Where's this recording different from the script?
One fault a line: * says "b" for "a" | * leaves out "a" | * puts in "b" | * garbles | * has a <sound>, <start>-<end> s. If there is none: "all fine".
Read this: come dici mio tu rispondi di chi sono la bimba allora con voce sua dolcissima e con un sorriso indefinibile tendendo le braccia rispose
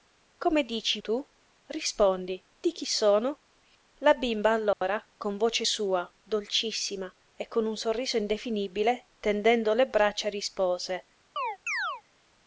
* leaves out "mio"
* has a dropout, 4.7-4.8 s
* has a chirp, 11.4-12.0 s